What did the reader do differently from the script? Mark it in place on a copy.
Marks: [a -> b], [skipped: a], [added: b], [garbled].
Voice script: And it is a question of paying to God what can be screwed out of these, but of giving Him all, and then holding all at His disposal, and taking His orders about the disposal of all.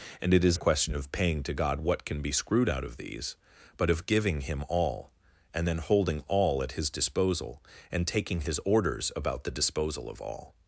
And it is a question of paying to God what can be screwed out of these, but of giving Him all, and then holding all at His disposal, and taking His orders about the disposal of all.